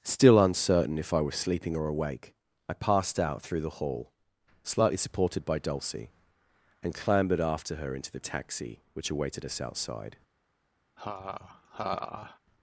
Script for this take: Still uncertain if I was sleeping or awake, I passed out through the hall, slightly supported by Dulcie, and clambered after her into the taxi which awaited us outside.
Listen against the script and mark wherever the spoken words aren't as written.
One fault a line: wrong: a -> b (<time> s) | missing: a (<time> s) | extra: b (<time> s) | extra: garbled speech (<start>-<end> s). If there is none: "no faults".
no faults